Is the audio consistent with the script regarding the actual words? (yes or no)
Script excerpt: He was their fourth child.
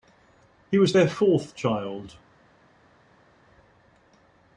yes